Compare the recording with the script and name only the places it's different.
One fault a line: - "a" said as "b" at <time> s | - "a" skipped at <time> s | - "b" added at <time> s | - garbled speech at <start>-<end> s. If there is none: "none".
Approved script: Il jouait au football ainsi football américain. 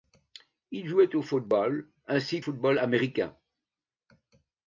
none